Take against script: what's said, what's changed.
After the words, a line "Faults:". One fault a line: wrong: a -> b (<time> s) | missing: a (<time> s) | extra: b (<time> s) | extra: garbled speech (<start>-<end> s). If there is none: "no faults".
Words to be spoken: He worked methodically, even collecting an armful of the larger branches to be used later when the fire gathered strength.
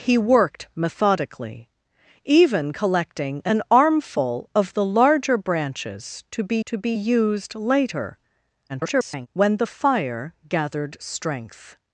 He worked methodically, even collecting an armful of the larger branches to be to be used later [garbled] when the fire gathered strength.
Faults:
extra: to be (6.7 s)
extra: garbled speech (8.7-9.3 s)